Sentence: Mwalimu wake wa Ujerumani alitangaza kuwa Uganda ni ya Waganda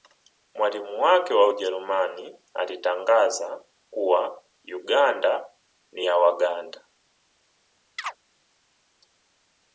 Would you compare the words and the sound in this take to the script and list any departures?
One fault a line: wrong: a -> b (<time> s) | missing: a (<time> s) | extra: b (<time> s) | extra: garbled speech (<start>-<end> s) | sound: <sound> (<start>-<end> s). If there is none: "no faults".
sound: chirp (8.0-8.2 s)